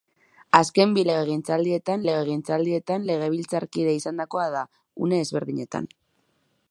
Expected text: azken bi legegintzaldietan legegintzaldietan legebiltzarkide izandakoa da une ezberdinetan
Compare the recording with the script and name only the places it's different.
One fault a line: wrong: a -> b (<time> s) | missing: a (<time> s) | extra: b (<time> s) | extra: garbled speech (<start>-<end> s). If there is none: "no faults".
no faults